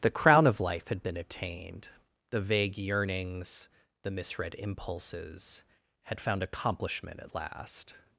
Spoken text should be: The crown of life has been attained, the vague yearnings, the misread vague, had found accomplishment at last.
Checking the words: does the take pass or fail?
fail